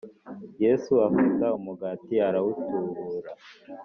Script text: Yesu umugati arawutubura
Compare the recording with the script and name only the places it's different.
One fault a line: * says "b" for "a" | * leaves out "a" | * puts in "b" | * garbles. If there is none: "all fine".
* puts in "afata"